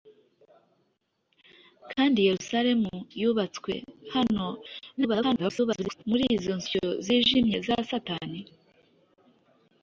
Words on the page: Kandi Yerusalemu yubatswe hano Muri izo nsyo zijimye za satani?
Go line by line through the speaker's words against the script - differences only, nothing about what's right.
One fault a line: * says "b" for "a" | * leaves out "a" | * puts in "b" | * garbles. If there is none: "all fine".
* garbles